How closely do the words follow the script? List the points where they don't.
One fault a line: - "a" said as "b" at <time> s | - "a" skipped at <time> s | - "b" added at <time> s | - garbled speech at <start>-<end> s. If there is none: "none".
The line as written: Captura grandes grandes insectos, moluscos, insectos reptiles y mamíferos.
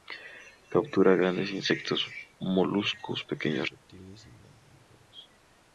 - "grandes" skipped at 1.5 s
- "insectos" said as "pequeños" at 3.2 s